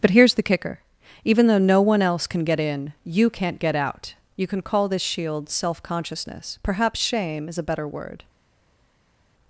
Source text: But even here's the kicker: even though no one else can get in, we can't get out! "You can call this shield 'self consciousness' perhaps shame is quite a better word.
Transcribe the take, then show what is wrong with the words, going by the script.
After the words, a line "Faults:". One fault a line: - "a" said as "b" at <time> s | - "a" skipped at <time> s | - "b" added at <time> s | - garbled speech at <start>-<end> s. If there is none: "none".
But here's the kicker: even though no one else can get in, you can't get out! "You can call this shield 'self consciousness' perhaps shame is a better word.
Faults:
- "even" skipped at 0.1 s
- "we" said as "you" at 3.0 s
- "quite" skipped at 7.6 s